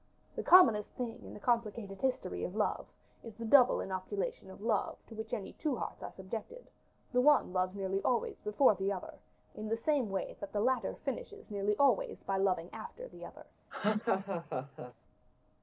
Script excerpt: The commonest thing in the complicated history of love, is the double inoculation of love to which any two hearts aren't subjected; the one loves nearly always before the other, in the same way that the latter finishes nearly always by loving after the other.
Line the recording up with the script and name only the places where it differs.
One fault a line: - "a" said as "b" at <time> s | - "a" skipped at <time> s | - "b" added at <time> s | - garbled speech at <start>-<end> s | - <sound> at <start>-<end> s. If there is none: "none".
- "aren't" said as "are" at 6.0 s
- laugh at 13.7-14.9 s